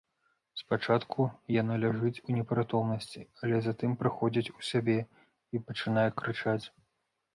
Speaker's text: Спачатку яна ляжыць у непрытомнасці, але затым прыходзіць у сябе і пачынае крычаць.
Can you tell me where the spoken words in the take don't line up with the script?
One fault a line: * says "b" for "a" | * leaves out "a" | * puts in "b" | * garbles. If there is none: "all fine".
all fine